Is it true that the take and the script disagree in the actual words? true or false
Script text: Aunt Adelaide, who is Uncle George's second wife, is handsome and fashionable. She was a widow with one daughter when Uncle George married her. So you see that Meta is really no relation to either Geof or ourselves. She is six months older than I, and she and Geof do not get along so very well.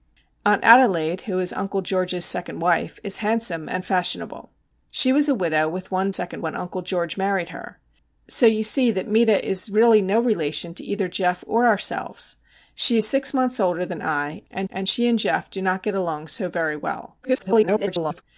true